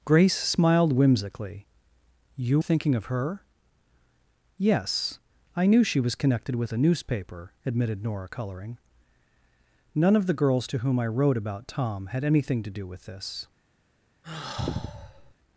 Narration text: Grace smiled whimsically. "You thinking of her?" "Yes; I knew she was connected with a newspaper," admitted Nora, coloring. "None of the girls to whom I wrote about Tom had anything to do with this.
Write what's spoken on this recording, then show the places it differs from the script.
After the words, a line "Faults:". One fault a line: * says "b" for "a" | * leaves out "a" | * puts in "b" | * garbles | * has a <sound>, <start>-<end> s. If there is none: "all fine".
Grace smiled whimsically. "You thinking of her?" "Yes; I knew she was connected with a newspaper," admitted Nora, coloring. "None of the girls to whom I wrote about Tom had anything to do with this.
Faults:
* has a sigh, 14.2-15.3 s